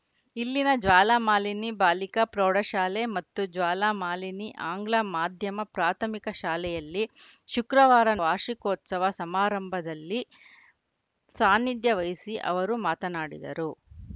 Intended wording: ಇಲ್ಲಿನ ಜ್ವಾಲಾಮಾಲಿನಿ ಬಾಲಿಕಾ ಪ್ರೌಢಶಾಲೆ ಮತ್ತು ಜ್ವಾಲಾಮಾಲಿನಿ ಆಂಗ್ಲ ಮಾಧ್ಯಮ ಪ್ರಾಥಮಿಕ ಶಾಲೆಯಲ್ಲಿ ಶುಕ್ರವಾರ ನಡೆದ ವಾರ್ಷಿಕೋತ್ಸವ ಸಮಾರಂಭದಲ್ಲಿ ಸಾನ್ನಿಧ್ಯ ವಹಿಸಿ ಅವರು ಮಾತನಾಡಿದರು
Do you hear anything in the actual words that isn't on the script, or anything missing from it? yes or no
yes